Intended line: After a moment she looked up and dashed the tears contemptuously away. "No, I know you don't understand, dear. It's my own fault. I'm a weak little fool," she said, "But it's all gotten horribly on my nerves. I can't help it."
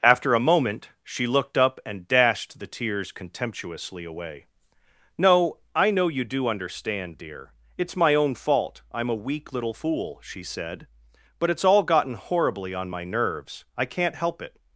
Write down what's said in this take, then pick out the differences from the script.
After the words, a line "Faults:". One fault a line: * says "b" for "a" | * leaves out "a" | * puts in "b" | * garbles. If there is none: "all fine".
After a moment she looked up and dashed the tears contemptuously away. "No, I know you do understand, dear. It's my own fault. I'm a weak little fool," she said, "But it's all gotten horribly on my nerves. I can't help it."
Faults:
* says "do" for "don't"